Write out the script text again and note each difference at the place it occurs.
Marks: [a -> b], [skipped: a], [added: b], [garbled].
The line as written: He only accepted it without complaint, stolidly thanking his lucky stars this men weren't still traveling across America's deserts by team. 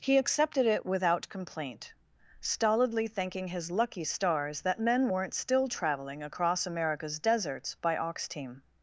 He [skipped: only] accepted it without complaint, stolidly thanking his lucky stars [this -> that] men weren't still traveling across America's deserts by [added: ox] team.